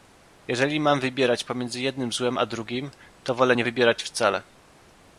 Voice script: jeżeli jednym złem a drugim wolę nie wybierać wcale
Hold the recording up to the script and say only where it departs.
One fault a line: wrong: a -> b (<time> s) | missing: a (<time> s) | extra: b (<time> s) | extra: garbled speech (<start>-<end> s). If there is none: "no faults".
extra: mam wybierać pomiędzy (0.8 s)
extra: to (3.2 s)